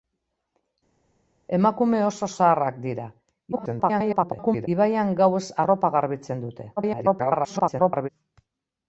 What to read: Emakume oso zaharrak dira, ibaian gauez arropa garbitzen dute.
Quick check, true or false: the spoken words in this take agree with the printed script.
false